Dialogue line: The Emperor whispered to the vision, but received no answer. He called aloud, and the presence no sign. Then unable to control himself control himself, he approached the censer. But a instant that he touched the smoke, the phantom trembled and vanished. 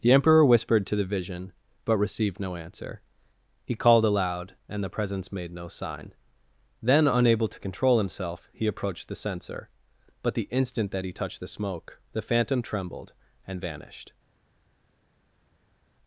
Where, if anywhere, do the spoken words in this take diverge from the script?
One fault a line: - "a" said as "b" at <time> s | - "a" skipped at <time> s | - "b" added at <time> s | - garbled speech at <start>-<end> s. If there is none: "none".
- "made" added at 5.3 s
- "control himself" skipped at 8.5 s
- "a" said as "the" at 10.3 s